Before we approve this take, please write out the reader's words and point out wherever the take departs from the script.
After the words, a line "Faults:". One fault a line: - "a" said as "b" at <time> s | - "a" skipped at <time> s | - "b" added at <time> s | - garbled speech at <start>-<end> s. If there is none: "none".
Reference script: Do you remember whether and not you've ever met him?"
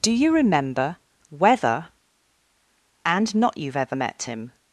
Do you remember whether and not you've ever met him?"
Faults:
none